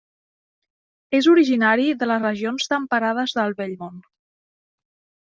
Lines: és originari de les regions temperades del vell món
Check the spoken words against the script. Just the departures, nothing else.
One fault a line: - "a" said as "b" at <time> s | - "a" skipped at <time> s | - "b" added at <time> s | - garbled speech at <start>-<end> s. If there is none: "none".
none